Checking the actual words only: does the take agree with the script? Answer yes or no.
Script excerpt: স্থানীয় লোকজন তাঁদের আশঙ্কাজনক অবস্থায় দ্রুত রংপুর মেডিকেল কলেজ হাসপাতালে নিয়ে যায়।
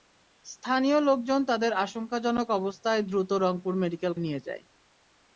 no